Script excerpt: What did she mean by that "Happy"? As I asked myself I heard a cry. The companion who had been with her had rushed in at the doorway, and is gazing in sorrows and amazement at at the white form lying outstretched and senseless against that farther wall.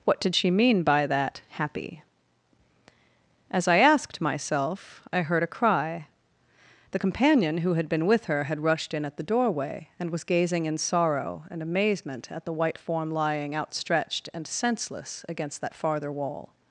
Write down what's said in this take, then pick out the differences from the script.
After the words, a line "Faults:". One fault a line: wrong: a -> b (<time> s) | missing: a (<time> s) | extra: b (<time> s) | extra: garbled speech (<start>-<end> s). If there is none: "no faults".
What did she mean by that "Happy"? As I asked myself I heard a cry. The companion who had been with her had rushed in at the doorway, and was gazing in sorrow and amazement at the white form lying outstretched and senseless against that farther wall.
Faults:
wrong: is -> was (10.1 s)
wrong: sorrows -> sorrow (10.8 s)
missing: at (12.4 s)